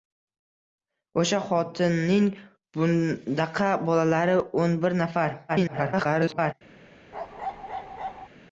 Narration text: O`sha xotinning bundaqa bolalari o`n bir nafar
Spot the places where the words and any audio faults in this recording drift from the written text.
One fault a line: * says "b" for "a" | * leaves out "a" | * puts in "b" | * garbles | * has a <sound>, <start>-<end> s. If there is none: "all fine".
* garbles
* has a bark, 7.1-8.3 s